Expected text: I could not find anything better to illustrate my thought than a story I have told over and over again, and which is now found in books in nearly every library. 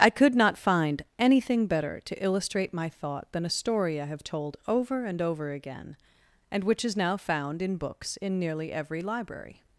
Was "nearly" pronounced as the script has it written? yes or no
yes